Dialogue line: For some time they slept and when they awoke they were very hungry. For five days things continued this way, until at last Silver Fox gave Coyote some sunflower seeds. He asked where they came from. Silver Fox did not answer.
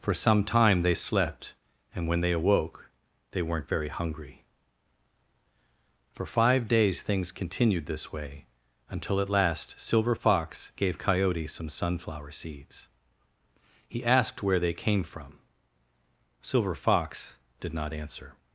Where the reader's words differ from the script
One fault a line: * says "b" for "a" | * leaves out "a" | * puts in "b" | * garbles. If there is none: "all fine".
* says "weren't" for "were"